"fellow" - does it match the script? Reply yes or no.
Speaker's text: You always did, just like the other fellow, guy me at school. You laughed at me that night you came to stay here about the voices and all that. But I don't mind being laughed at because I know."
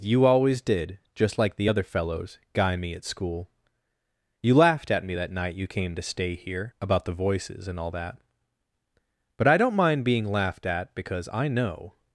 no